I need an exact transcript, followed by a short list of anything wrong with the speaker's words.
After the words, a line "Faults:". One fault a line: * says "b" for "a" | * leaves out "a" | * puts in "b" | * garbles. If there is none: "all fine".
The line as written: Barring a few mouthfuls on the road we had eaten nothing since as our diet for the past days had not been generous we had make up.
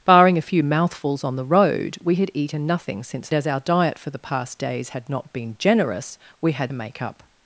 Barring a few mouthfuls on the road we had eaten nothing since as our diet for the past days had not been generous we had make up.
Faults:
all fine